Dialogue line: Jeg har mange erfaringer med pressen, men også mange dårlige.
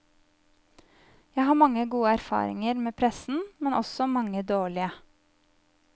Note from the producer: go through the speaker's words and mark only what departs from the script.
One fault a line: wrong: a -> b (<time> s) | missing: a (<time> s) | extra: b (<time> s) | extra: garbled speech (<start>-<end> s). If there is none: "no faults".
extra: gode (1.9 s)